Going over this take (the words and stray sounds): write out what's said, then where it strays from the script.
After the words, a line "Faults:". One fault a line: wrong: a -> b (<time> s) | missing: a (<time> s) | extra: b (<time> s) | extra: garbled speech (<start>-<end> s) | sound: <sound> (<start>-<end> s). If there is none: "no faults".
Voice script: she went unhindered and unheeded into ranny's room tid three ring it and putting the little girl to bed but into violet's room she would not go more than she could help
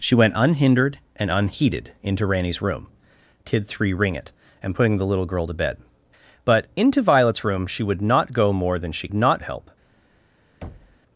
she went unhindered and unheeded into ranny's room tid three ring it and putting the little girl to bed but into violet's room she would not go more than she not help
Faults:
wrong: could -> not (9.1 s)
sound: thud (10.6-11.0 s)